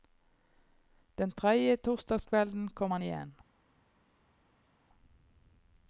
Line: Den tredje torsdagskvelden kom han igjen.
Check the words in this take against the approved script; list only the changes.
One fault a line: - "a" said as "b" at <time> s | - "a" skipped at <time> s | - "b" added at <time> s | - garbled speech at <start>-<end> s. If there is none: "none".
none